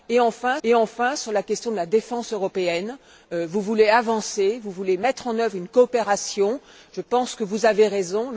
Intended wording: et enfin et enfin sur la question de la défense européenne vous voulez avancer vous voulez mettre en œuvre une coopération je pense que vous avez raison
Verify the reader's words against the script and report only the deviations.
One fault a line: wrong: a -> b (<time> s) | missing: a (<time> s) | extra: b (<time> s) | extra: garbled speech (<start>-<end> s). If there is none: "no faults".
no faults